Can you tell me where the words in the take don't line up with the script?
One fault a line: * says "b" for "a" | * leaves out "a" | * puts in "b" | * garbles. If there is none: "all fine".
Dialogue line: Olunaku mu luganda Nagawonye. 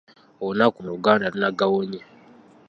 all fine